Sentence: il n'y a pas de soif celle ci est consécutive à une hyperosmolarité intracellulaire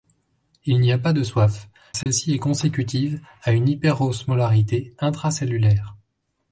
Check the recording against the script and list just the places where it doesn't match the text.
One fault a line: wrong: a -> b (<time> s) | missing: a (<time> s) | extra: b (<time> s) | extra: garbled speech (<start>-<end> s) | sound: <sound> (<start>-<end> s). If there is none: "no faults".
sound: dropout (2.0-2.1 s)